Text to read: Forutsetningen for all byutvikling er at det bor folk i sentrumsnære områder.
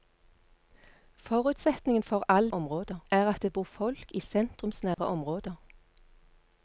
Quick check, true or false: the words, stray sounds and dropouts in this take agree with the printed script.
false